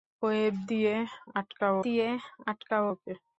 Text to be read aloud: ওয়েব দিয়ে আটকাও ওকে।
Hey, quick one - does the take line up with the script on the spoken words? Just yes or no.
no